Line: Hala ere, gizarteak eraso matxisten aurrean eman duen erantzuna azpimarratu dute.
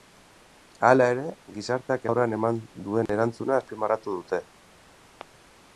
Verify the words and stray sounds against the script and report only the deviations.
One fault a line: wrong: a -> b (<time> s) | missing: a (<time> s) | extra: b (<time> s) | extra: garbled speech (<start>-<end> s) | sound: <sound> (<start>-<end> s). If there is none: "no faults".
missing: eraso matxisten (2.1 s)
sound: dropout (3.1-3.1 s)